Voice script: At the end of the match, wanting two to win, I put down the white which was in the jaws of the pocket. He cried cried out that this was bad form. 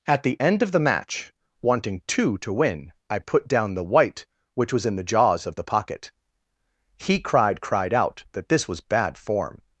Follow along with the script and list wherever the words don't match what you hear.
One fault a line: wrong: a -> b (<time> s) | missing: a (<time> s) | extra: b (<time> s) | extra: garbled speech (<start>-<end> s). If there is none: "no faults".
no faults